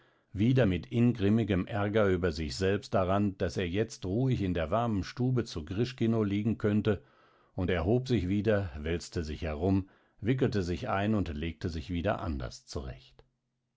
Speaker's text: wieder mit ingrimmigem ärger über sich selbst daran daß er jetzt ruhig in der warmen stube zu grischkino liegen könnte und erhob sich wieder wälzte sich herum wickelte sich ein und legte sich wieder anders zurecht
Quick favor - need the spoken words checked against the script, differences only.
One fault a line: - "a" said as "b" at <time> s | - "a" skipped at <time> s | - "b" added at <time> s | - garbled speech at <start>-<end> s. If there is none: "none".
none